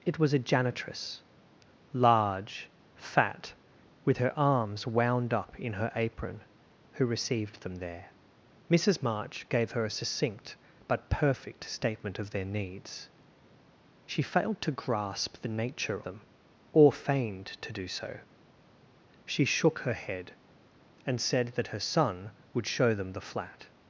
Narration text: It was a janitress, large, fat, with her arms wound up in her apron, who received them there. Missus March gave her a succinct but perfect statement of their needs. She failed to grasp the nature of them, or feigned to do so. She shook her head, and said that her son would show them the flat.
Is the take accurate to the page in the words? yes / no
no